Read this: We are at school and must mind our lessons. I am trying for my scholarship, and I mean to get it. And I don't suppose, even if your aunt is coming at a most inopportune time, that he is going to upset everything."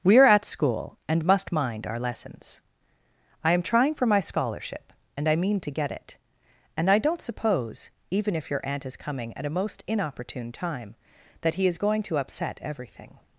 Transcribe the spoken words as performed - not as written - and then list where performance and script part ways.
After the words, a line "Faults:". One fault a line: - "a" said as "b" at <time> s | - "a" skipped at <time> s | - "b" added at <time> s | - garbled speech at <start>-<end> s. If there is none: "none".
We are at school and must mind our lessons. I am trying for my scholarship, and I mean to get it. And I don't suppose, even if your aunt is coming at a most inopportune time, that he is going to upset everything."
Faults:
none